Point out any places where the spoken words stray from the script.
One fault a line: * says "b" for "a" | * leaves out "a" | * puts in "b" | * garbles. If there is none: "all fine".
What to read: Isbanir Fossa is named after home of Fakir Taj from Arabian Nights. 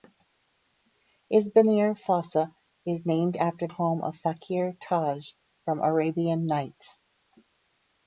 all fine